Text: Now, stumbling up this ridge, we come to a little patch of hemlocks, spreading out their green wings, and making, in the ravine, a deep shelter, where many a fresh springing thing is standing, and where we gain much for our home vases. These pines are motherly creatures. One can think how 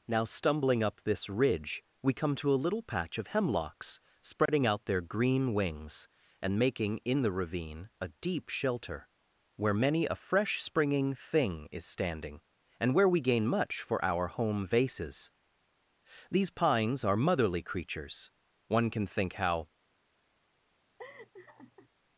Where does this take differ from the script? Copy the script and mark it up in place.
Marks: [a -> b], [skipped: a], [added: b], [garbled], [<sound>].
Now, stumbling up this ridge, we come to a little patch of hemlocks, spreading [dropout] out their green wings, and making, in the ravine, a deep shelter, where many a fresh springing thing is standing, and where we gain much for our home vases. These pines are motherly creatures. One can think how [laugh]